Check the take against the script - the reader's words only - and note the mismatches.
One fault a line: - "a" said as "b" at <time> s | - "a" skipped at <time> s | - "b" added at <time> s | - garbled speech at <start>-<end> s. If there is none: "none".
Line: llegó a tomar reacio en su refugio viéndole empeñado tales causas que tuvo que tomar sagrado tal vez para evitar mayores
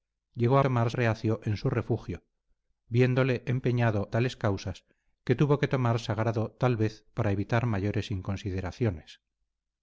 none